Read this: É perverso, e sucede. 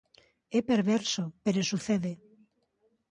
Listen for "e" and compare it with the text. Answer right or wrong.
wrong